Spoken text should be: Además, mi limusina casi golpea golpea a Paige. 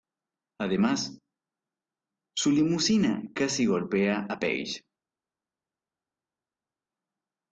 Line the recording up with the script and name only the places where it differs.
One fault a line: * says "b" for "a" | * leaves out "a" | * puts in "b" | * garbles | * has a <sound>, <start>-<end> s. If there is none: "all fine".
* says "su" for "mi"
* leaves out "golpea"